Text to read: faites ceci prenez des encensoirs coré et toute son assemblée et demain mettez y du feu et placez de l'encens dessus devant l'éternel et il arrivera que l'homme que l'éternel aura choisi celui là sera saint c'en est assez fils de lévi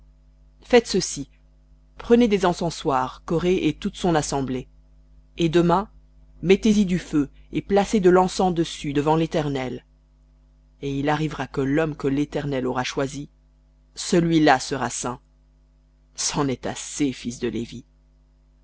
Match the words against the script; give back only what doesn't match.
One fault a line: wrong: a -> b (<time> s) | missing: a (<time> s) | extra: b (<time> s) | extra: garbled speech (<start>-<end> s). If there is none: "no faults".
no faults